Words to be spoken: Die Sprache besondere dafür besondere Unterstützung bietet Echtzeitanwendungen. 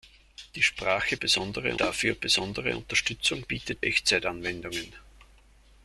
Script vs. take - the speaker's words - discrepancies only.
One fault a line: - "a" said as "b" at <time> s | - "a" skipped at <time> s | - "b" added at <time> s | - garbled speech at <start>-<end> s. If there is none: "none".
none